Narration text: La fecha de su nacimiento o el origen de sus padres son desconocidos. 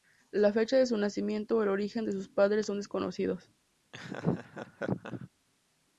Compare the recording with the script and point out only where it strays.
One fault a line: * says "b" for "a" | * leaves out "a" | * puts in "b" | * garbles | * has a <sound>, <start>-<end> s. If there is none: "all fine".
* has a laugh, 3.9-5.3 s